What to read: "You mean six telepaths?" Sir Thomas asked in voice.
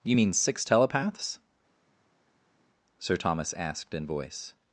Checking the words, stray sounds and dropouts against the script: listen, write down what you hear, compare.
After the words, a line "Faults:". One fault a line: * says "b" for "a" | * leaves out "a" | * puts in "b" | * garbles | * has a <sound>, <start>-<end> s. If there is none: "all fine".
"You mean six telepaths?" Sir Thomas asked in voice.
Faults:
all fine